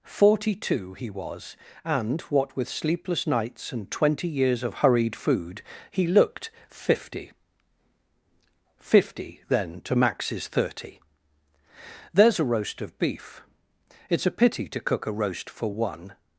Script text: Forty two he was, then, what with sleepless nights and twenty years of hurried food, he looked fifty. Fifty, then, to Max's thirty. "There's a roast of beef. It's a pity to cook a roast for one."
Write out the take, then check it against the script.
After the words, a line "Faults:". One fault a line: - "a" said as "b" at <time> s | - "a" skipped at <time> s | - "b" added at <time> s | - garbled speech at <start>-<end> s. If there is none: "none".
Forty two he was, and, what with sleepless nights and twenty years of hurried food, he looked fifty. Fifty, then, to Max's thirty. "There's a roast of beef. It's a pity to cook a roast for one."
Faults:
- "then" said as "and" at 1.9 s